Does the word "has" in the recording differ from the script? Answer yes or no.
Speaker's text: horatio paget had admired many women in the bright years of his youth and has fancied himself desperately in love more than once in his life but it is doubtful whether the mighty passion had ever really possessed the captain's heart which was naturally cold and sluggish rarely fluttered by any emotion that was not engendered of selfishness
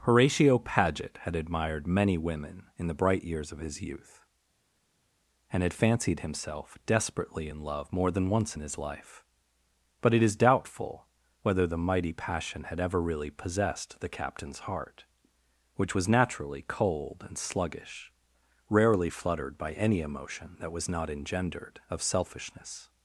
yes